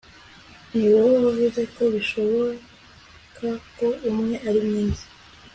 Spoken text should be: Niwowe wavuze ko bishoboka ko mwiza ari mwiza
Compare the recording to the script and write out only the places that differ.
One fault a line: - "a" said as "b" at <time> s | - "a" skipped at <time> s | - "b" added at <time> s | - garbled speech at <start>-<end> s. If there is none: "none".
- "mwiza" said as "umwe" at 4.1 s